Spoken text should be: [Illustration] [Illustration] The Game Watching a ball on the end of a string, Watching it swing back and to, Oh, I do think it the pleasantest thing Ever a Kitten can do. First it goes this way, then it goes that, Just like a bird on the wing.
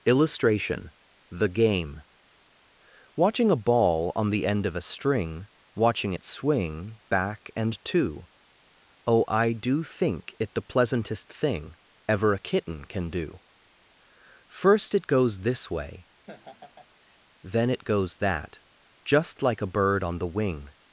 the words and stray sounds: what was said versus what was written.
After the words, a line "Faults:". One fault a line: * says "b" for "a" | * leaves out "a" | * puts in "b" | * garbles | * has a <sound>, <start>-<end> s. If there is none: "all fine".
[Illustration] The Game Watching a ball on the end of a string, Watching it swing back and to, Oh, I do think it the pleasantest thing Ever a Kitten can do. First it goes this way, then it goes that, Just like a bird on the wing.
Faults:
* leaves out "Illustration"
* has a laugh, 16.3-17.2 s